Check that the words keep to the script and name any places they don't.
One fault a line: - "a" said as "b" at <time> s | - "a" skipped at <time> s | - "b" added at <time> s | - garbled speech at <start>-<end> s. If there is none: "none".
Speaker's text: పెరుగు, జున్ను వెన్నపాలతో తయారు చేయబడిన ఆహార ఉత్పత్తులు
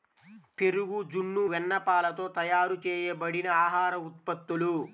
none